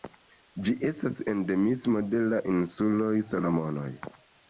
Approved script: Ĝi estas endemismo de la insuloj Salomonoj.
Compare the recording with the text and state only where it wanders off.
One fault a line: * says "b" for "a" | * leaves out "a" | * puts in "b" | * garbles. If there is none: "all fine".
all fine